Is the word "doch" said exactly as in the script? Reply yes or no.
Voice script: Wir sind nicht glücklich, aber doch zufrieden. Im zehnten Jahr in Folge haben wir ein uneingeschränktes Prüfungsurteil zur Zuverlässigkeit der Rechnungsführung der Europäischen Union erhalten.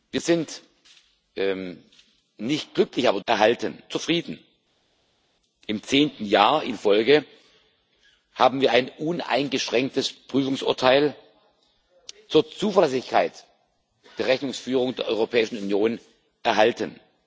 no